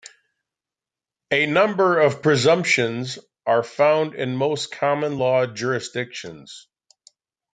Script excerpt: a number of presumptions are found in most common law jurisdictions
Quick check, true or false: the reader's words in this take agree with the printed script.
true